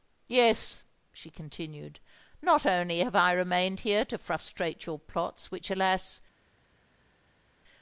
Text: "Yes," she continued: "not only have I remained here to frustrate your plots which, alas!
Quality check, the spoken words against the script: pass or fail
pass